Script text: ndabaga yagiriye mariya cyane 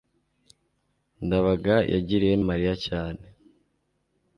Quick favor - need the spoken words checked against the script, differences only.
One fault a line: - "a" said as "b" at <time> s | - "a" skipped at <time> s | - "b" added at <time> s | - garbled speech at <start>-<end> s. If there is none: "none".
none